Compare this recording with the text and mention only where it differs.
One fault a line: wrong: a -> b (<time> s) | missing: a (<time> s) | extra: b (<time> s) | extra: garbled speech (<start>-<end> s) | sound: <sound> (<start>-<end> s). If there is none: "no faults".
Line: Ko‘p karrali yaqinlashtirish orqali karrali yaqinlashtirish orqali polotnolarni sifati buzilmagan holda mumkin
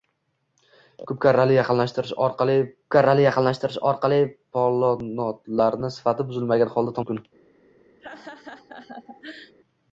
sound: laugh (8.0-9.5 s)